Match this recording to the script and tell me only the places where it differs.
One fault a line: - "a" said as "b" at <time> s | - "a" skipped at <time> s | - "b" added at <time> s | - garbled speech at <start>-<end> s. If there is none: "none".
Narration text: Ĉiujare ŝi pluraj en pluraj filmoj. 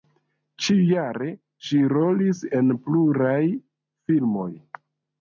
- "pluraj" said as "rolis" at 1.9 s